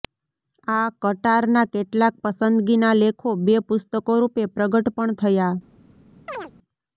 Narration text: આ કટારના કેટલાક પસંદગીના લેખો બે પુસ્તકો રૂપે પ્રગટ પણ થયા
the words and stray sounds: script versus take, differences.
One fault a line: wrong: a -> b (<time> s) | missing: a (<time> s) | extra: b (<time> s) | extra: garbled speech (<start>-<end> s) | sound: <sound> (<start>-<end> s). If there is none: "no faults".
sound: chirp (6.3-6.5 s)